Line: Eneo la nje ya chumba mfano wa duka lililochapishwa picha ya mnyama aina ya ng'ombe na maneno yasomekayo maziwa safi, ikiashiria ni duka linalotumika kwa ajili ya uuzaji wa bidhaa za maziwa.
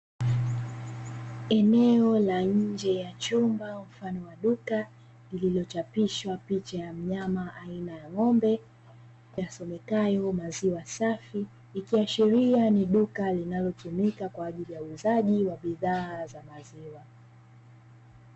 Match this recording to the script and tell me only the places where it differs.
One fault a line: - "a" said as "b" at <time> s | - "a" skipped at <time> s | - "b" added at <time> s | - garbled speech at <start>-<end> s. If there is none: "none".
- "na maneno" skipped at 8.6 s